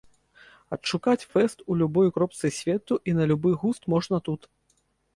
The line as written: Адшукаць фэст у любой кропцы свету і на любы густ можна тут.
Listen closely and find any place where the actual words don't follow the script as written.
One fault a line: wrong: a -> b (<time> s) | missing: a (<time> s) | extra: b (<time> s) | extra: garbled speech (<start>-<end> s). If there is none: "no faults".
no faults